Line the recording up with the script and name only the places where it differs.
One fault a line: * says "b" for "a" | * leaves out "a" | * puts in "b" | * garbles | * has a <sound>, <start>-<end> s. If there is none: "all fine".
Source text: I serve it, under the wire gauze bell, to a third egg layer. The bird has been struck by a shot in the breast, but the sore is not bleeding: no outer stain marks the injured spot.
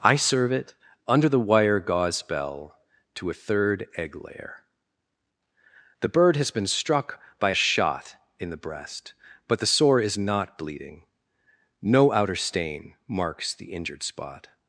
* leaves out "a"